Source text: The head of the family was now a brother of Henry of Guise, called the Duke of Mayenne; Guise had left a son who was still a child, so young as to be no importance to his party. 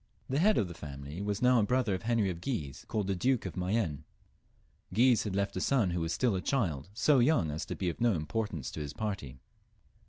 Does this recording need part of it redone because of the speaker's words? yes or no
yes